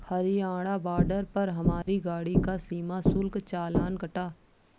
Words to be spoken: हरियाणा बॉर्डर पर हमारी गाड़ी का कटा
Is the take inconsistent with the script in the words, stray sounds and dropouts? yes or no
yes